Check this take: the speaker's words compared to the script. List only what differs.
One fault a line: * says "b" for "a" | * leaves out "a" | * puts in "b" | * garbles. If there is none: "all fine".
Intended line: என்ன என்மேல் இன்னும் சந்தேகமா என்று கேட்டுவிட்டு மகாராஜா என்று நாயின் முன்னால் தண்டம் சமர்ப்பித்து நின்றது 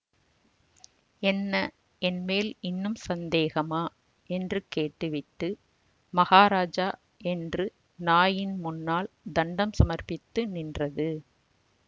all fine